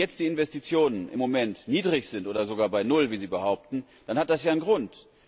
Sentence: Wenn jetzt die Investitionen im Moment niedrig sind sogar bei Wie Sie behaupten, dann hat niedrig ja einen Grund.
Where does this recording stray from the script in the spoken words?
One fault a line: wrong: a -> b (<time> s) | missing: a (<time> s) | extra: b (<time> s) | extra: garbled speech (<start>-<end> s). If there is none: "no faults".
extra: oder (2.3 s)
extra: Null (2.8 s)
wrong: niedrig -> das (4.3 s)